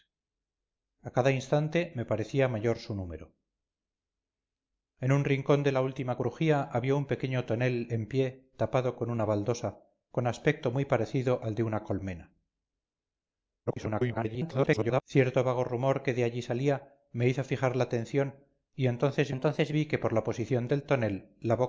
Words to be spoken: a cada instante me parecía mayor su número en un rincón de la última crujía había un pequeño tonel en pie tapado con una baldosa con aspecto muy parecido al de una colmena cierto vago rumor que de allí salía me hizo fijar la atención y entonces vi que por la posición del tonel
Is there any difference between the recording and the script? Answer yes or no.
yes